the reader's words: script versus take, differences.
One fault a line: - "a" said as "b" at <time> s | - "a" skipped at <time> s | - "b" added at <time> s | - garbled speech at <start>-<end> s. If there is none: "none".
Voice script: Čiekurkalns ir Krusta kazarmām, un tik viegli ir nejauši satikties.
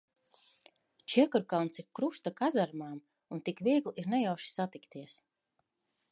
none